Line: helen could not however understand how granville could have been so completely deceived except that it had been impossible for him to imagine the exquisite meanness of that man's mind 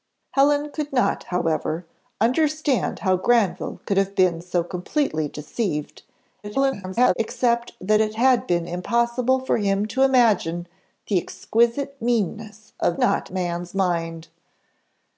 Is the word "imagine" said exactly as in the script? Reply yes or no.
yes